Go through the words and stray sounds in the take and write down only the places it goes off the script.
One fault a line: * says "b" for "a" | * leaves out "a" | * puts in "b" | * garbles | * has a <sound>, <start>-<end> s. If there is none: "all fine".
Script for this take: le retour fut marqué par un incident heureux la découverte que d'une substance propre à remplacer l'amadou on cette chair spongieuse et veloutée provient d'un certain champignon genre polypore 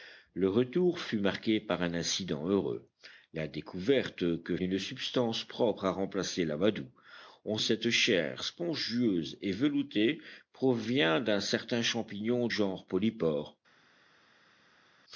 all fine